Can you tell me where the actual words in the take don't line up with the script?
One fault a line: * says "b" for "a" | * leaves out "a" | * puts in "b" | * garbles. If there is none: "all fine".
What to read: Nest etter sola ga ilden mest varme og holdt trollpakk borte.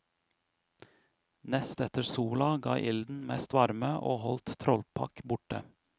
all fine